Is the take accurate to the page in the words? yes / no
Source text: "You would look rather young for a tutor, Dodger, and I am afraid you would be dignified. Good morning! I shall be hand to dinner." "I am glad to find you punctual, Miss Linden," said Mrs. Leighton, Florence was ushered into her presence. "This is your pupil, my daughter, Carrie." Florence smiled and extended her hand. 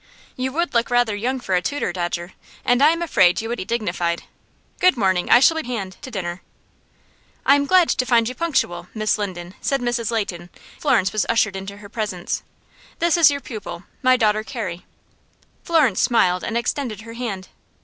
yes